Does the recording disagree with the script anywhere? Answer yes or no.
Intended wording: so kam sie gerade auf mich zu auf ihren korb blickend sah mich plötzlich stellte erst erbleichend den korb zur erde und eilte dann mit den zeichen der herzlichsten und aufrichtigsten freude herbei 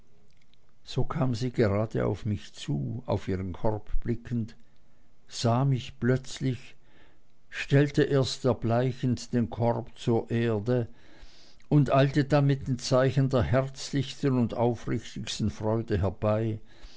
no